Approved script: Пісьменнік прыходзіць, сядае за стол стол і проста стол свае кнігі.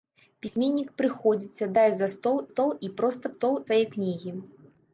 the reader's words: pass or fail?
pass